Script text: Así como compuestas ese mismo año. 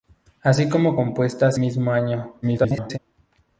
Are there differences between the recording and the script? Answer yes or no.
yes